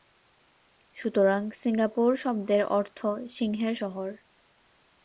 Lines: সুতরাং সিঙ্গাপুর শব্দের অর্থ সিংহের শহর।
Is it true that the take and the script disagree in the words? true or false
false